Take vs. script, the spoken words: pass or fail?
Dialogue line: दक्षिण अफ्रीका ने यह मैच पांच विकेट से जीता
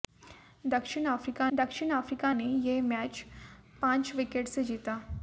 fail